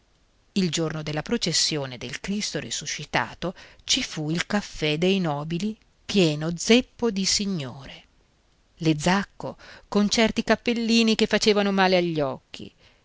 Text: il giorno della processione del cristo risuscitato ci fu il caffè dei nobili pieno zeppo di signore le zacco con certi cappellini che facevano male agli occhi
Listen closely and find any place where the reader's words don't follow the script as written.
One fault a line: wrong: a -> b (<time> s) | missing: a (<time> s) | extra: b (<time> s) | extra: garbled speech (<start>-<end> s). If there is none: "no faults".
no faults